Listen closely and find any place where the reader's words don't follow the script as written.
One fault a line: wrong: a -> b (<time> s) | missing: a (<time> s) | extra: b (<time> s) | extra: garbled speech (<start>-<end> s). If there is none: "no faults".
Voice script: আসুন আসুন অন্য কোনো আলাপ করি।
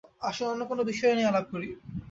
missing: আসুন (0.5 s)
extra: বিষয় নিয়ে (0.9 s)